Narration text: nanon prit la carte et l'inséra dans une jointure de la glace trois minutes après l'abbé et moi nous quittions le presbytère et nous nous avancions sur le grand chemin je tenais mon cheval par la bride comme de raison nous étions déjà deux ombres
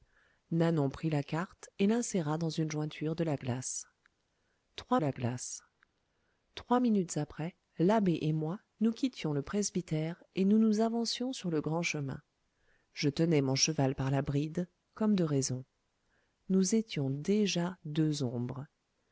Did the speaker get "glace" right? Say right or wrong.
right